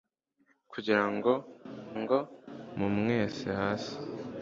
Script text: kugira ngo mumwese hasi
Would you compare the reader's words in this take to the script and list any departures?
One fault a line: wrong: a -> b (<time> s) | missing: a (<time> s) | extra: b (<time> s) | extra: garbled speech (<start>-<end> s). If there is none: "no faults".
extra: ngo (2.0 s)